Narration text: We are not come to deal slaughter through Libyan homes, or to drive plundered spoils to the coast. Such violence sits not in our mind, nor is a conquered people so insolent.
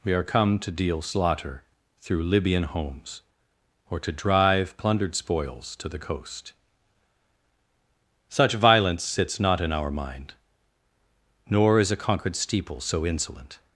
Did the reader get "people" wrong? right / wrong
wrong